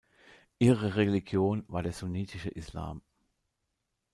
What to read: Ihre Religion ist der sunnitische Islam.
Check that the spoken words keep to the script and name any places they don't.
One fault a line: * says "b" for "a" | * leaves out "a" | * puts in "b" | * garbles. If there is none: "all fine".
* says "war" for "ist"